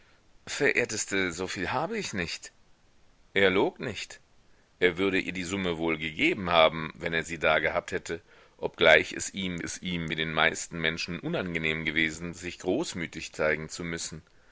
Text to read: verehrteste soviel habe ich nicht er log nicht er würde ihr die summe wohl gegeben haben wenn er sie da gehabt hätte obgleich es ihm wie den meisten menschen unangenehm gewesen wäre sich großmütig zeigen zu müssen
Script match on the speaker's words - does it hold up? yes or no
no